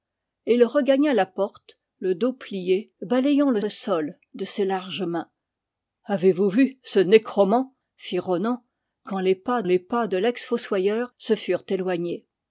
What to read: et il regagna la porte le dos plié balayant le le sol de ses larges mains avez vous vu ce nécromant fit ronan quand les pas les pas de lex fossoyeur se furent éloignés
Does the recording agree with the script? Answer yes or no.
yes